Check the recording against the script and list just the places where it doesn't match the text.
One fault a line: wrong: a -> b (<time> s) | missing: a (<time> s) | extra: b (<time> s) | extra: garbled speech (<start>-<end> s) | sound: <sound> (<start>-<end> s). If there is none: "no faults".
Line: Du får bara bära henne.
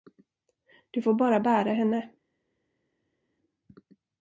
no faults